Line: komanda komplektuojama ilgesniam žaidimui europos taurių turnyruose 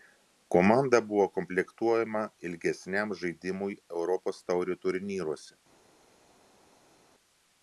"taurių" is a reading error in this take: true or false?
false